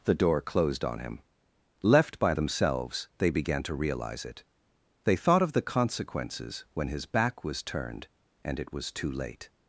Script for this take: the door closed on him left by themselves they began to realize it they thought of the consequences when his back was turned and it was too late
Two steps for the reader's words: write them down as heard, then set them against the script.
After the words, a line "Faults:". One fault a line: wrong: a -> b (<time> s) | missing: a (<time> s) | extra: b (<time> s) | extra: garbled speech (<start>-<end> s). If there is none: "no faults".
the door closed on him left by themselves they began to realize it they thought of the consequences when his back was turned and it was too late
Faults:
no faults